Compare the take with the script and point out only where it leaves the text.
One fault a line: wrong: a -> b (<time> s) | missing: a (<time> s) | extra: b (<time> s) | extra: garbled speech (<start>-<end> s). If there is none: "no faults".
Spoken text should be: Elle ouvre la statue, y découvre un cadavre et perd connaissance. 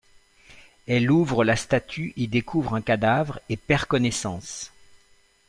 no faults